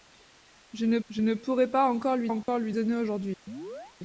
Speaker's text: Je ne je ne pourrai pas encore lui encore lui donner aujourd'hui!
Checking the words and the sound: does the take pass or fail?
fail